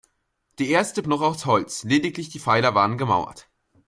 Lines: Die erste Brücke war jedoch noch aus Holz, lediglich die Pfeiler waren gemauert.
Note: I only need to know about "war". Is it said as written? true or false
false